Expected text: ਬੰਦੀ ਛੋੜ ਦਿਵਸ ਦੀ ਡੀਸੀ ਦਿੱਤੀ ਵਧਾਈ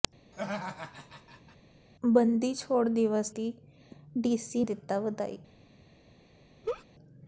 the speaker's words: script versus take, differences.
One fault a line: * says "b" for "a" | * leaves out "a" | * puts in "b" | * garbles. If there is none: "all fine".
all fine